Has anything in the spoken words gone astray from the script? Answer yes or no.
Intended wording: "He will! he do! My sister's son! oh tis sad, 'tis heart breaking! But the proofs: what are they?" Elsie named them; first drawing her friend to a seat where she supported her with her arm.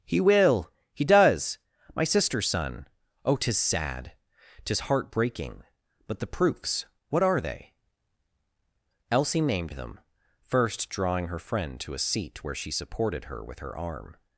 yes